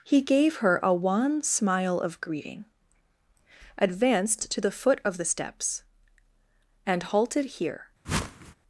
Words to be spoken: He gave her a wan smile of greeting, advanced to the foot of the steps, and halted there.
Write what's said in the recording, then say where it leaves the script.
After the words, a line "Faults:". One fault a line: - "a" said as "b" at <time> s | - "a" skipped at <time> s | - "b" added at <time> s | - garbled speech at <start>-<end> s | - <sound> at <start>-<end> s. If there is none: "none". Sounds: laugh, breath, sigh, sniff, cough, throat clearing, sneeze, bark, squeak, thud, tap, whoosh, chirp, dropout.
He gave her a wan smile of greeting, advanced to the foot of the steps, and halted here.
Faults:
- "there" said as "here" at 7.4 s
- whoosh at 8.0-8.5 s